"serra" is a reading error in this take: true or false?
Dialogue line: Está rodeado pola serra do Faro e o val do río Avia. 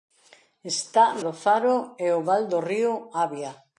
true